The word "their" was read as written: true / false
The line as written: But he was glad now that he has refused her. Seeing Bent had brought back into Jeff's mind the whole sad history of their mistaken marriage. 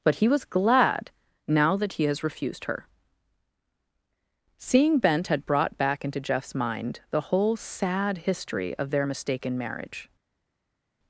true